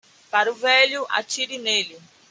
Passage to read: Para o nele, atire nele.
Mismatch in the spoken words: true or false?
true